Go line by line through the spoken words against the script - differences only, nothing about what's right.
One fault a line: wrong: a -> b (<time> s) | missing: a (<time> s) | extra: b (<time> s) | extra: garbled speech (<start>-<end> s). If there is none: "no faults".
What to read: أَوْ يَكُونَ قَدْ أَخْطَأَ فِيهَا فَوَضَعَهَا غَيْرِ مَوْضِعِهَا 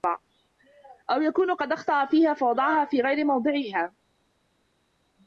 extra: فِي (2.9 s)